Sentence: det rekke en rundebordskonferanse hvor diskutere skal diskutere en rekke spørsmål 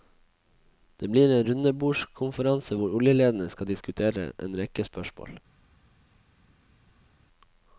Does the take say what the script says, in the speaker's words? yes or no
no